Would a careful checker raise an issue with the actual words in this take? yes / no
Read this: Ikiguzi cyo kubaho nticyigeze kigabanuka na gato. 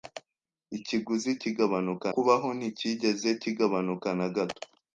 yes